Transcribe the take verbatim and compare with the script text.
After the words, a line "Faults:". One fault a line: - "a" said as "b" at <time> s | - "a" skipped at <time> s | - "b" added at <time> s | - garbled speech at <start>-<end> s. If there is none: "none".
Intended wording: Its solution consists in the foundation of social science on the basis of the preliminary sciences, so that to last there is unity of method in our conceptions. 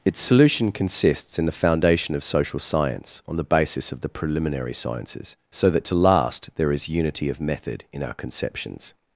Its solution consists in the foundation of social science on the basis of the preliminary sciences, so that to last there is unity of method in our conceptions.
Faults:
none